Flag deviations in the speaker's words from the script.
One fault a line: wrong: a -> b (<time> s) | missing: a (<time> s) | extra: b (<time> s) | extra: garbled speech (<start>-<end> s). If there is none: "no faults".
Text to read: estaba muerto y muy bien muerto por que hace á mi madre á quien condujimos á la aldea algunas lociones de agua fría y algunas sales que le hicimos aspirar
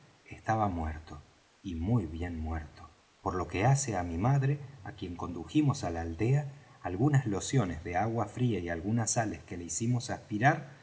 extra: lo (3.3 s)